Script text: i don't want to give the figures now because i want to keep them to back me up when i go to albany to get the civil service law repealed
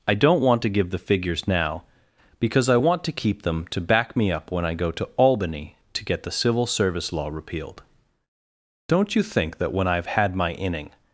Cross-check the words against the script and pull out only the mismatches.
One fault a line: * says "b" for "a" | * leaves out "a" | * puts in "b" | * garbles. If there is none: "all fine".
* puts in "don't you think that when i've had my inning"